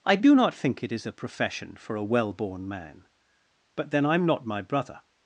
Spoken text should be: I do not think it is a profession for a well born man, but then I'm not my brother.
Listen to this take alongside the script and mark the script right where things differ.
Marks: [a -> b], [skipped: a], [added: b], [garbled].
I do not think it is a profession for a well born man, but then I'm not my brother.